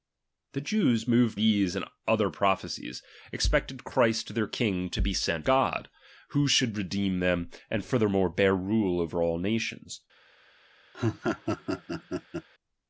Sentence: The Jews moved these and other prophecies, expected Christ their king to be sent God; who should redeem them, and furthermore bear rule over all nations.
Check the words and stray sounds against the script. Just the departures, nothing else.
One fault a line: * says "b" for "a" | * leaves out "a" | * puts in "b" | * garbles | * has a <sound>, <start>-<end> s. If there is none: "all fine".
* has a laugh, 10.9-12.5 s